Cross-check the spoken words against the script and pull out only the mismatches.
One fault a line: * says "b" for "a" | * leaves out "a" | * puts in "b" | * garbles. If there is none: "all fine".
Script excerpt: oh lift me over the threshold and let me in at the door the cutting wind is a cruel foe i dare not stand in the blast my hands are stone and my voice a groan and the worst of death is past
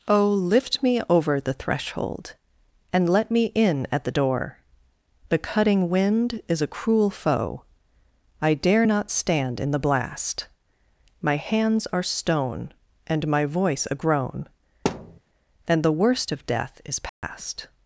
all fine